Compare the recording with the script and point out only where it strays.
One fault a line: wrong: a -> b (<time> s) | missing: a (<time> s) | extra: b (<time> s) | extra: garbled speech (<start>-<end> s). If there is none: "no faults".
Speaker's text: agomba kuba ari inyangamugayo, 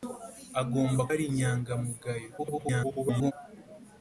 missing: kuba (1.0 s)
extra: garbled speech (2.4-3.3 s)